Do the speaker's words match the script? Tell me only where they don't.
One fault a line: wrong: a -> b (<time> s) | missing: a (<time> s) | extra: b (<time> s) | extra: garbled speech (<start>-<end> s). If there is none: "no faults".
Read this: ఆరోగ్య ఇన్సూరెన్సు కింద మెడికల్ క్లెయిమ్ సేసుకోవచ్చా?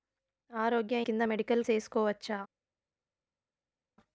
missing: ఇన్సూరెన్సు (1.0 s)
missing: క్లెయిమ్ (1.6 s)